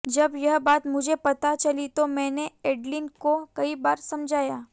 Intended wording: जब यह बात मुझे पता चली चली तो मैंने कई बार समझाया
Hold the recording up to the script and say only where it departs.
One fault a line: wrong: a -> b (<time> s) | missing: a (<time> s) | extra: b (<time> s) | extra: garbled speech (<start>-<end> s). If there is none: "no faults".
missing: चली (1.9 s)
extra: एडलिन को (2.7 s)